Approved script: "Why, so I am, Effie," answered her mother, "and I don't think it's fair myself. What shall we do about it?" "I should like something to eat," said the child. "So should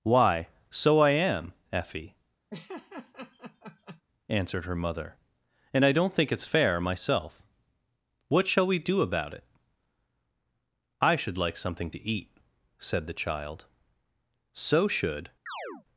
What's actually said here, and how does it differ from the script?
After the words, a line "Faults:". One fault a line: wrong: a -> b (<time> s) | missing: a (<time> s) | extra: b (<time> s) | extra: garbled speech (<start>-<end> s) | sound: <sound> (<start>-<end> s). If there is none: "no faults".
"Why, so I am, Effie," answered her mother, "and I don't think it's fair myself. What shall we do about it?" "I should like something to eat," said the child. "So should
Faults:
sound: laugh (2.5-4.0 s)
sound: chirp (15.5-15.9 s)